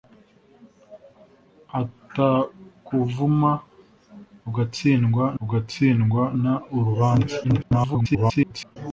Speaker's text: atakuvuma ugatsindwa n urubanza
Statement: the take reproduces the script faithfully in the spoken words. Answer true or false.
false